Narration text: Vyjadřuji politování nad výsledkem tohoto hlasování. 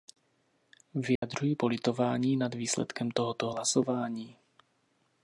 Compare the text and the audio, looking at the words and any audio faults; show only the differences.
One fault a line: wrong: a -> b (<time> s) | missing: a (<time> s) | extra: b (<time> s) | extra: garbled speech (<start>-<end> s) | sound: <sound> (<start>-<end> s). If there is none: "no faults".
sound: dropout (1.2-1.2 s)